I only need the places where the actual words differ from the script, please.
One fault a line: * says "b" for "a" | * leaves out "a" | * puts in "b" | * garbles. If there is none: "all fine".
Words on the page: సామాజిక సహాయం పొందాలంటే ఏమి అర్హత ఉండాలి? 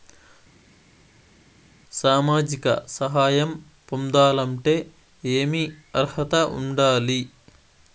all fine